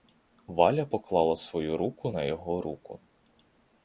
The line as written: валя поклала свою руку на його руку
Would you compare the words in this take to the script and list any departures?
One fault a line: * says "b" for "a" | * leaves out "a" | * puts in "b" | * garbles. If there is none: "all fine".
all fine